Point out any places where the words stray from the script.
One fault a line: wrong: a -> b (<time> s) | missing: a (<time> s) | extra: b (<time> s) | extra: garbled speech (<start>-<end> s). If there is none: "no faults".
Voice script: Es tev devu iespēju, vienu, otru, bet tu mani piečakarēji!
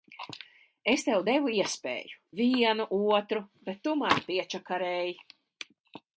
no faults